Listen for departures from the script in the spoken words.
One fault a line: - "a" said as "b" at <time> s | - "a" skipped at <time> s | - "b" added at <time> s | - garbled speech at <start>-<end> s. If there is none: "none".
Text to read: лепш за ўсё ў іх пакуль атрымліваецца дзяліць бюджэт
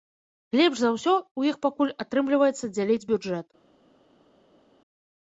none